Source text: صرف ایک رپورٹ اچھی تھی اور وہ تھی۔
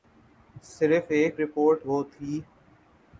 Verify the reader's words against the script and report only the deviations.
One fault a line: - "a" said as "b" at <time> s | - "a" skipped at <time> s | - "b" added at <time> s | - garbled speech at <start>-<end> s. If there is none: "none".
- "اچھی تھی اور" skipped at 1.9 s